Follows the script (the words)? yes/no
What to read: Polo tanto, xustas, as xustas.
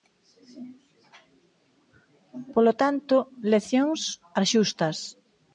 no